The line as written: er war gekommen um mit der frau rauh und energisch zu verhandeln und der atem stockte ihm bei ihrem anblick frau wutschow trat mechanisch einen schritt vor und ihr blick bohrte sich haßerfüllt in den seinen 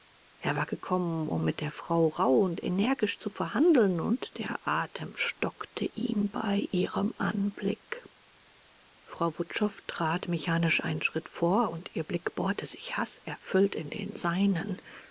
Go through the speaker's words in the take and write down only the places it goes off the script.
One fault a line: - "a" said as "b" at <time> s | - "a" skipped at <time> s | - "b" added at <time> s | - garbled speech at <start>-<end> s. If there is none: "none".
none